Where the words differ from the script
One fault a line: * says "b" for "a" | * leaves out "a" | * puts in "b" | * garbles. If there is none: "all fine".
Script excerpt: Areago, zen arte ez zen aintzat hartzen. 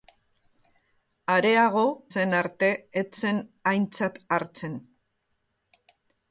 all fine